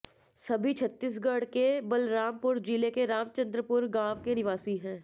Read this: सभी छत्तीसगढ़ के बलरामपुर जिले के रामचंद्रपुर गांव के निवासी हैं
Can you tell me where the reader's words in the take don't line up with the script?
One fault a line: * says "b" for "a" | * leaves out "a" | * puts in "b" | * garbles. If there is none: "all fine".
all fine